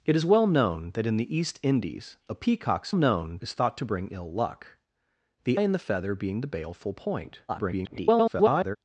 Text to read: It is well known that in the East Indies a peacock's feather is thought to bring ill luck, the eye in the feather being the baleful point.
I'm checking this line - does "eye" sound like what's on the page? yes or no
no